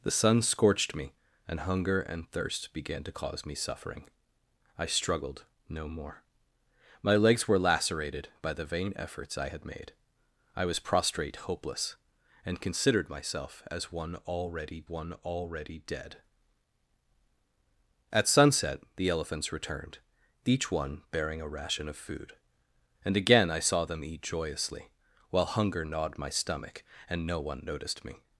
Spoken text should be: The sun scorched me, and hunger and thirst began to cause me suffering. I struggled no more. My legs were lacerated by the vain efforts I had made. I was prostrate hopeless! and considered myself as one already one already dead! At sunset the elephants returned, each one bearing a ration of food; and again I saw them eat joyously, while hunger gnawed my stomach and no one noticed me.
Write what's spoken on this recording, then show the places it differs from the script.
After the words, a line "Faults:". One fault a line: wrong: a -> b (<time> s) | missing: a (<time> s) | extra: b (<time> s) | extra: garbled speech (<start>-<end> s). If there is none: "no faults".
The sun scorched me, and hunger and thirst began to cause me suffering. I struggled no more. My legs were lacerated by the vain efforts I had made. I was prostrate hopeless! and considered myself as one already one already dead! At sunset the elephants returned, each one bearing a ration of food; and again I saw them eat joyously, while hunger gnawed my stomach and no one noticed me.
Faults:
no faults